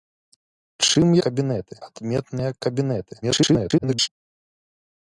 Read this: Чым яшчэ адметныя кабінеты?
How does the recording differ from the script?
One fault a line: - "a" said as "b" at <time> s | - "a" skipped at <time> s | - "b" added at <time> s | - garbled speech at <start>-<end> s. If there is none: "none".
- "яшчэ" said as "кабінеты" at 1.3 s
- garbled speech at 3.2-4.1 s